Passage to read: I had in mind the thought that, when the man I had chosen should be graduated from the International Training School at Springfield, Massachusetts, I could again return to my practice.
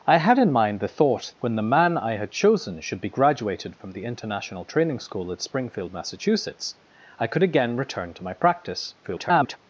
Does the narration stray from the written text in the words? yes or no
yes